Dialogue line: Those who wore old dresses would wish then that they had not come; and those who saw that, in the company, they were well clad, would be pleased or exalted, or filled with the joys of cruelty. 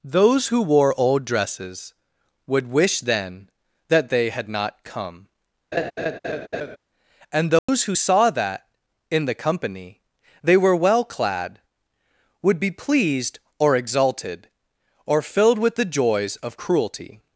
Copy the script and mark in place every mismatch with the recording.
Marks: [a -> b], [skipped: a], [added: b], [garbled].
Those who wore old dresses would wish then that they had not come; and those who saw that, in the company, they were well clad, would be pleased or exalted, or filled with the joys of cruelty.